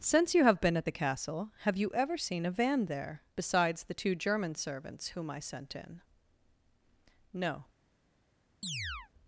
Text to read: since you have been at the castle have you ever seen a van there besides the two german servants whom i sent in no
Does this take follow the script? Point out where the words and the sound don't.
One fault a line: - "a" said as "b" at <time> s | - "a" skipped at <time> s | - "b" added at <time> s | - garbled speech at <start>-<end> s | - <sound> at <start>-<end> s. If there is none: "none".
- chirp at 8.6-9.1 s